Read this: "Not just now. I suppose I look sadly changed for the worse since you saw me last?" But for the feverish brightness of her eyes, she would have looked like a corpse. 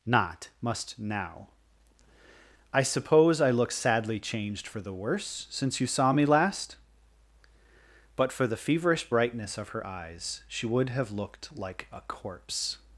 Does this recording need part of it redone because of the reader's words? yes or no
yes